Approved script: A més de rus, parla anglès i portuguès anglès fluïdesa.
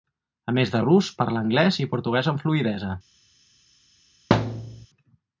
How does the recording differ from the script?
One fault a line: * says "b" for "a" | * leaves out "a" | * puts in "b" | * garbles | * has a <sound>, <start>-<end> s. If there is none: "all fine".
* says "amb" for "anglès"
* has a thud, 4.3-4.9 s